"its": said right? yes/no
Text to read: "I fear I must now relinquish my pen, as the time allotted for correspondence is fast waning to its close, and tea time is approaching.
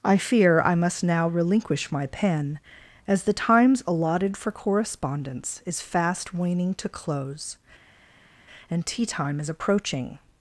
no